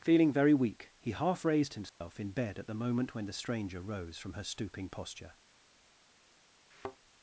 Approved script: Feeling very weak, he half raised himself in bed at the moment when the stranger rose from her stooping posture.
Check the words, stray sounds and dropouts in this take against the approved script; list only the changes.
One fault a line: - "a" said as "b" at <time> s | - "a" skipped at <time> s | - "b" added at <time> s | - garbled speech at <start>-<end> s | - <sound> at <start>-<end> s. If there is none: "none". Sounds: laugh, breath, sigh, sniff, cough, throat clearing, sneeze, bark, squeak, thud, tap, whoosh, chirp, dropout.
- dropout at 1.9-2.0 s
- thud at 6.7-7.0 s